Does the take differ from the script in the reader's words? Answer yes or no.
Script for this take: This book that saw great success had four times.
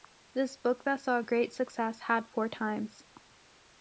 no